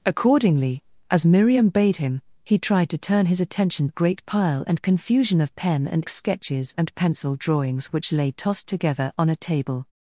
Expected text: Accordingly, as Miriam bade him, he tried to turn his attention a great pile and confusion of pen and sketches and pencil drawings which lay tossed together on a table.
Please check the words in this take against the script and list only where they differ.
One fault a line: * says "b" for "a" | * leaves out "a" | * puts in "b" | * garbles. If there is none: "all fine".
all fine